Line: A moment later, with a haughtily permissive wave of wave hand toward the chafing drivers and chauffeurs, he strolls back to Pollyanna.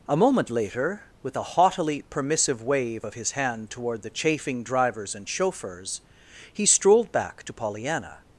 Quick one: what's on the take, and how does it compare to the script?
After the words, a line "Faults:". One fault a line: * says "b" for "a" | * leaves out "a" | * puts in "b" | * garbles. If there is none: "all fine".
A moment later, with a haughtily permissive wave of his hand toward the chafing drivers and chauffeurs, he strolled back to Pollyanna.
Faults:
* says "his" for "wave"
* says "strolled" for "strolls"